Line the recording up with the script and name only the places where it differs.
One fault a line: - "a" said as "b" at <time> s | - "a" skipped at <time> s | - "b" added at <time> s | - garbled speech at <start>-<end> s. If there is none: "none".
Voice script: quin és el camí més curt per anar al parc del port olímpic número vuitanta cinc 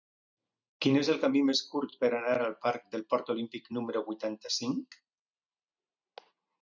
none